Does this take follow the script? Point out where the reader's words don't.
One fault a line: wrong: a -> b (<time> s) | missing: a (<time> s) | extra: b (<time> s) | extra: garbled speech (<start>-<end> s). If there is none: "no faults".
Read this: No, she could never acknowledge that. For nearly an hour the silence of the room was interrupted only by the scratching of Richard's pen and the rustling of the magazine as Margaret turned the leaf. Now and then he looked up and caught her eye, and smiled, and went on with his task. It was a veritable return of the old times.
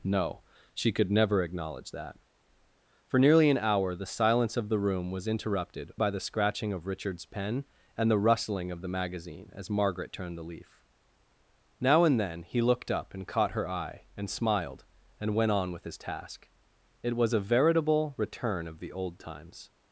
missing: only (5.9 s)